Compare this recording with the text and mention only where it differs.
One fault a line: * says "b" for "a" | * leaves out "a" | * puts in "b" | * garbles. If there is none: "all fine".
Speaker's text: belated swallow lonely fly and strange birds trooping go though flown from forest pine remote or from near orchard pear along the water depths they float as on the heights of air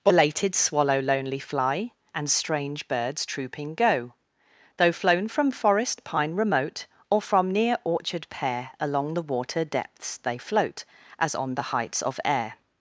all fine